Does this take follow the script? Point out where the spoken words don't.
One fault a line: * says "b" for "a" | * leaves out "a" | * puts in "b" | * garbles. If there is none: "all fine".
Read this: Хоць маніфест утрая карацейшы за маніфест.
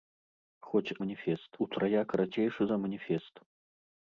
all fine